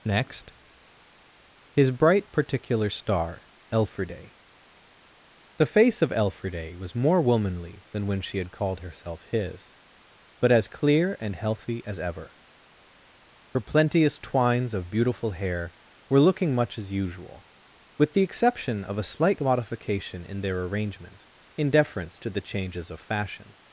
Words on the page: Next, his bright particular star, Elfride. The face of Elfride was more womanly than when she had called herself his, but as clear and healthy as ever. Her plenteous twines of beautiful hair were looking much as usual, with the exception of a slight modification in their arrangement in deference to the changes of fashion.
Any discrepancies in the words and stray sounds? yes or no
no